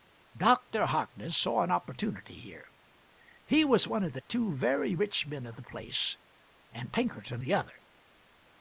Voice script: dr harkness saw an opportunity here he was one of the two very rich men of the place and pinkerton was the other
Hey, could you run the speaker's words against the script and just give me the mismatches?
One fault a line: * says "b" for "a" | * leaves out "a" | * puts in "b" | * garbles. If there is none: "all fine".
* leaves out "was"